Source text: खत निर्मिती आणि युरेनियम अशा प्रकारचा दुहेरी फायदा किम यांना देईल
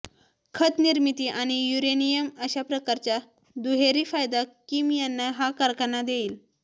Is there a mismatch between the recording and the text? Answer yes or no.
yes